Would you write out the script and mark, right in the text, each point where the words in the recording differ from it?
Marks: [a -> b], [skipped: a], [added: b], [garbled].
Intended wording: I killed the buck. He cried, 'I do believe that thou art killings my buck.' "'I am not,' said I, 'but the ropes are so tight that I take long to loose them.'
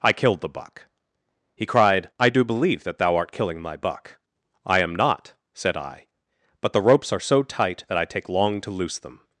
I killed the buck. He cried, 'I do believe that thou art [killings -> killing] my buck.' "'I am not,' said I, 'but the ropes are so tight that I take long to loose them.'